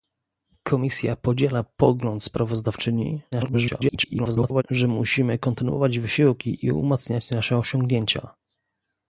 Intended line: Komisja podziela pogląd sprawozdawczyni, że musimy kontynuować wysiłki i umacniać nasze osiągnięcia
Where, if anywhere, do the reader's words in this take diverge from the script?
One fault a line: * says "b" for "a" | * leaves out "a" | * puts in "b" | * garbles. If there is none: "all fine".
* garbles